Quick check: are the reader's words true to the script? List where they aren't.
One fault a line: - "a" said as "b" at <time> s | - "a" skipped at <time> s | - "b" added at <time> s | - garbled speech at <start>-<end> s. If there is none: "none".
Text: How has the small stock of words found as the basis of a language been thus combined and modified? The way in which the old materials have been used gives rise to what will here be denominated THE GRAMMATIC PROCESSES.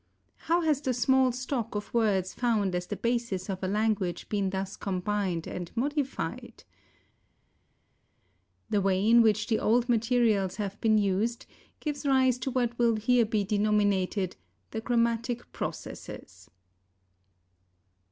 none